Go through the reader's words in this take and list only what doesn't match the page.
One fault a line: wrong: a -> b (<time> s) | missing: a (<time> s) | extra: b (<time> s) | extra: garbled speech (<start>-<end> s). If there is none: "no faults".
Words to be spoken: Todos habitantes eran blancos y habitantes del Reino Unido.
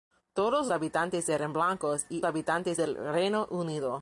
no faults